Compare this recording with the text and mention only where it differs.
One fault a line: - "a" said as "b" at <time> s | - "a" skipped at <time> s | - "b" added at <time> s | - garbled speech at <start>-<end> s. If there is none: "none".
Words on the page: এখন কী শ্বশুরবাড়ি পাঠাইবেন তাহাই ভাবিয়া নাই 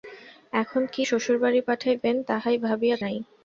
none